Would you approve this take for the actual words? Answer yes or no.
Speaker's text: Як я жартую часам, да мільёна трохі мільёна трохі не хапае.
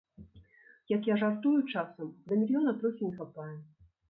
no